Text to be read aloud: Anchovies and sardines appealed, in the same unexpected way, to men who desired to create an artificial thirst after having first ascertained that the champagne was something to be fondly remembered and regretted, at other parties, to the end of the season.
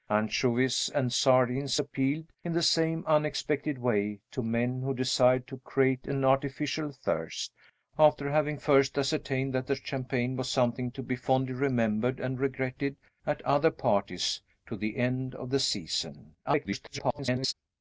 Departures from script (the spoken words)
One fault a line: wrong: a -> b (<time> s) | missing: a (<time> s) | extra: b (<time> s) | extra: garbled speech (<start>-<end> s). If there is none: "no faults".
extra: garbled speech (16.4-17.5 s)